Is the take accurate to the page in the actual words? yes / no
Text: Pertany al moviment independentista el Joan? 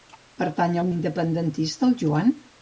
no